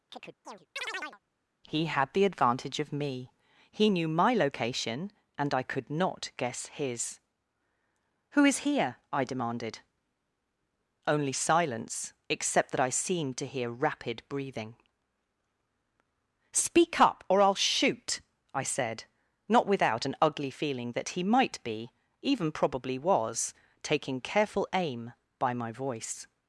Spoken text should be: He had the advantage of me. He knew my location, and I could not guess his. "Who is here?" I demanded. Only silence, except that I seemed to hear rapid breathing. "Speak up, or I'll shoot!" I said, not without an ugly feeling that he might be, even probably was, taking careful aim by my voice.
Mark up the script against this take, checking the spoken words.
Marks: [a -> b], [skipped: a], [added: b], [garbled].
He had the advantage of me. He knew my location, and I could not guess his. "Who is here?" I demanded. Only silence, except that I seemed to hear rapid breathing. "Speak up, or I'll shoot!" I said, not without an ugly feeling that he might be, even probably was, taking careful aim by my voice.